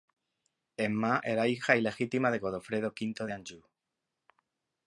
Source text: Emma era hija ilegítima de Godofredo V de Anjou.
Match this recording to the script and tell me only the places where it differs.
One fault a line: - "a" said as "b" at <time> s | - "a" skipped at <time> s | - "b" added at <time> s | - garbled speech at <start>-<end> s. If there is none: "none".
none